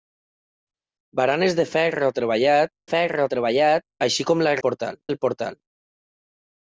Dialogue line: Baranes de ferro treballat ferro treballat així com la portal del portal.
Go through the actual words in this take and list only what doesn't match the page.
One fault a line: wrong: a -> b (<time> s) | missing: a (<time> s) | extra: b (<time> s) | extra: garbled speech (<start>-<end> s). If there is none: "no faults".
no faults